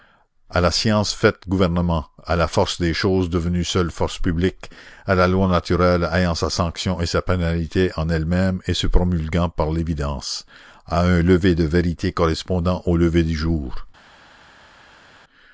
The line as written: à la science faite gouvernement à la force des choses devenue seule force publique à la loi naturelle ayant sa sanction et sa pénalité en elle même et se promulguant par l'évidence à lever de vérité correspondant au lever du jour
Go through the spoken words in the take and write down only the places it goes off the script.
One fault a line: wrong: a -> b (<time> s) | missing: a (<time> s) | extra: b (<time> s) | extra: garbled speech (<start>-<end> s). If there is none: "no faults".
extra: un (11.0 s)